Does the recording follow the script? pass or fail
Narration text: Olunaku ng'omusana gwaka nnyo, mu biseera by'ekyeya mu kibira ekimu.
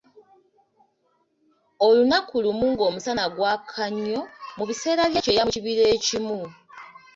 fail